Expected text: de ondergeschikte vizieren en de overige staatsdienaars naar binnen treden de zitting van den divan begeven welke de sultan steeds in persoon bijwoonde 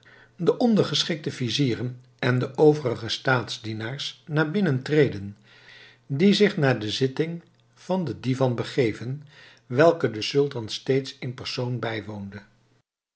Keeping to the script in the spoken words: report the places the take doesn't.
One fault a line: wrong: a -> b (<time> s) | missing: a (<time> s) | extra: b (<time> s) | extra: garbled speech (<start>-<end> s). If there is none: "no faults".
extra: die zich naar (6.1 s)